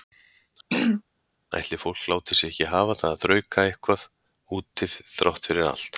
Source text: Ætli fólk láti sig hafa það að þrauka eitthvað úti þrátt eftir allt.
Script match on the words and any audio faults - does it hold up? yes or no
no